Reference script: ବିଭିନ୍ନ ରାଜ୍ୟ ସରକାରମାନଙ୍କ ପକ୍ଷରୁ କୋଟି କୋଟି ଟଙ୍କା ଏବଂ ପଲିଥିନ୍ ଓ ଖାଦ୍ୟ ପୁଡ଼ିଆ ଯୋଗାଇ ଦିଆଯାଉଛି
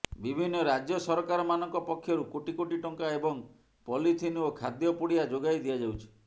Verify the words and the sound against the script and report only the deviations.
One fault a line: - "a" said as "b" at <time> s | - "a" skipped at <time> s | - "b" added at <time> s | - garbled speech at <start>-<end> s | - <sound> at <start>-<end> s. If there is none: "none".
none